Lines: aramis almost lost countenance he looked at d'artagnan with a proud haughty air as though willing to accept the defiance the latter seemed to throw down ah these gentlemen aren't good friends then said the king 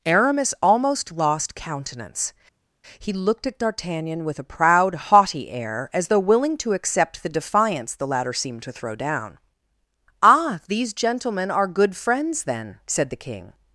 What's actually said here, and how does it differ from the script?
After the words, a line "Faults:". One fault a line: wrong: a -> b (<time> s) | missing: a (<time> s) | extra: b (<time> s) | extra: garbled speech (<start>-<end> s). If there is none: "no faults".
aramis almost lost countenance he looked at d'artagnan with a proud haughty air as though willing to accept the defiance the latter seemed to throw down ah these gentlemen are good friends then said the king
Faults:
wrong: aren't -> are (11.5 s)